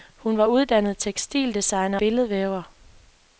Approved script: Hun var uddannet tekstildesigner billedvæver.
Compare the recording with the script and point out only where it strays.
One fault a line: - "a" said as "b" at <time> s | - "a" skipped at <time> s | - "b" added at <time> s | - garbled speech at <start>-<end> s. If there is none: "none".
none